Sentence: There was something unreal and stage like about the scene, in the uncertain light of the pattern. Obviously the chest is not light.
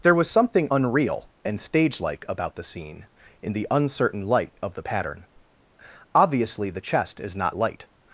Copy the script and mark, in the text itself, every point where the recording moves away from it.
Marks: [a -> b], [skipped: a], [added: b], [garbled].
There was something unreal and stage like about the scene, in the uncertain light of the pattern. Obviously the chest is not light.